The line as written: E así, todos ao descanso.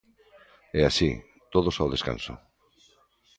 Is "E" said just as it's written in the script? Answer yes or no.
yes